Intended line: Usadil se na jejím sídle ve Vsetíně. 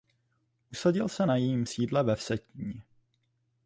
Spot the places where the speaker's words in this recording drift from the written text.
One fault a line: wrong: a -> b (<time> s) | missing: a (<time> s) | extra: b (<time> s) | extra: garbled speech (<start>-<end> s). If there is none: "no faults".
no faults